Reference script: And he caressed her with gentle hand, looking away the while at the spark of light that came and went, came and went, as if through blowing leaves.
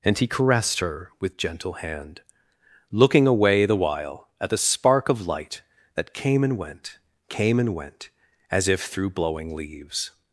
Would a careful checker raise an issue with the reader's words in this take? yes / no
no